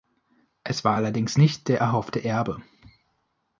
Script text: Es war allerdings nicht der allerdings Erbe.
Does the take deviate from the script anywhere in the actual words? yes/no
yes